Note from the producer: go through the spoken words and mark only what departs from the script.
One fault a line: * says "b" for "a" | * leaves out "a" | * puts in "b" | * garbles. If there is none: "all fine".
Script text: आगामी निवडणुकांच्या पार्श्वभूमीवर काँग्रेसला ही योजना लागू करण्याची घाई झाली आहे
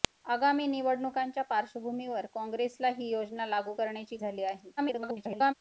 * leaves out "घाई"
* garbles